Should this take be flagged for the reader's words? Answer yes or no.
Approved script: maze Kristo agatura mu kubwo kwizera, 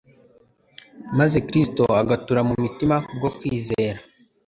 yes